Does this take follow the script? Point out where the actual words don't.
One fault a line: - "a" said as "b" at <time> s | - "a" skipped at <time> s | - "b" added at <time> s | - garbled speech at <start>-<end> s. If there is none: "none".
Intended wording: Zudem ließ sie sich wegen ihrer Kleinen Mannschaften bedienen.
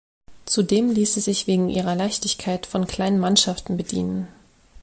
- "Leichtigkeit von" added at 1.9 s